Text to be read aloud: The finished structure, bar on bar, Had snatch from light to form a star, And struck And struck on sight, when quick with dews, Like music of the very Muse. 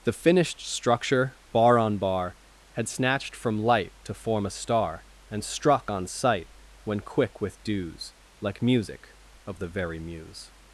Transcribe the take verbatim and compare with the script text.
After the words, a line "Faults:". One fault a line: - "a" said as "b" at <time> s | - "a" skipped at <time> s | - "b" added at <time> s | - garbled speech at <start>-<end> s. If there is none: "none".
The finished structure, bar on bar, Had snatched from light to form a star, And struck on sight, when quick with dews, Like music of the very Muse.
Faults:
- "snatch" said as "snatched" at 2.9 s
- "And struck" skipped at 5.9 s